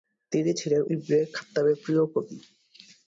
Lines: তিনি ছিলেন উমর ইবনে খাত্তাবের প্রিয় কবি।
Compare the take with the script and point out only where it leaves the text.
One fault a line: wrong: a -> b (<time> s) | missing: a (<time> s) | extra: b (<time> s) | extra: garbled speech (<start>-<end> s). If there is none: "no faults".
missing: উমর (0.8 s)